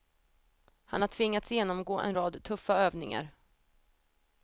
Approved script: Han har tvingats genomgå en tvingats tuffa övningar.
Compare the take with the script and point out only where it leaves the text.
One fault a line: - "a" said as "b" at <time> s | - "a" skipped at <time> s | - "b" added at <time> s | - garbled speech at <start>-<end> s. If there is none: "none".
- "tvingats" said as "rad" at 2.1 s